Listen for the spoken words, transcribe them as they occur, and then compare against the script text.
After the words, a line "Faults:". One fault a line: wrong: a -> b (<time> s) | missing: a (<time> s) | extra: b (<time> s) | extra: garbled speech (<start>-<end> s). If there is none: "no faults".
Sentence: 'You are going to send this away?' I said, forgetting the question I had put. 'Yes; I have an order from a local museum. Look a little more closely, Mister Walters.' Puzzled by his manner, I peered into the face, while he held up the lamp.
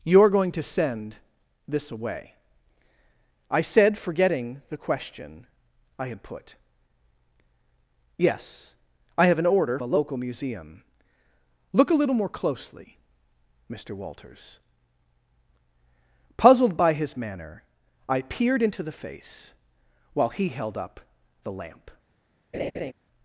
'You are going to send this away?' I said, forgetting the question I had put. 'Yes; I have an order a local museum. Look a little more closely, Mister Walters.' Puzzled by his manner, I peered into the face, while he held up the lamp.
Faults:
missing: from (9.8 s)